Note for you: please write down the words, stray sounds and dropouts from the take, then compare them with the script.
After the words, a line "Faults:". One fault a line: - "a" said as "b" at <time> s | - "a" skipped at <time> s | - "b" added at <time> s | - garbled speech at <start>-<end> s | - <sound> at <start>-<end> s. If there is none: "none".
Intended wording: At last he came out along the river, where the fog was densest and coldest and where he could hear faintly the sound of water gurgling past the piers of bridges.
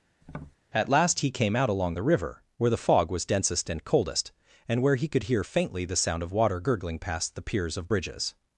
At last he came out along the river, where the fog was densest and coldest and where he could hear faintly the sound of water gurgling past the piers of bridges.
Faults:
- tap at 0.2-0.6 s